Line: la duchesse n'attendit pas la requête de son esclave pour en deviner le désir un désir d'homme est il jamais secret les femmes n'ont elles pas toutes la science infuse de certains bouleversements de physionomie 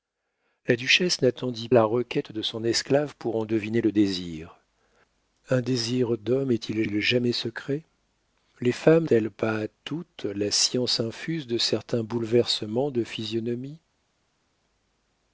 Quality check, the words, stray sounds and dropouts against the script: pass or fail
fail